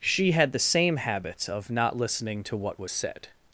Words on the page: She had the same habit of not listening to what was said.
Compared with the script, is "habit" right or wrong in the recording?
wrong